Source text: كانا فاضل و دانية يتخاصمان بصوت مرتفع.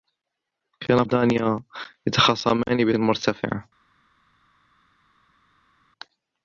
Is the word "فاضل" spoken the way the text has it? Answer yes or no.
no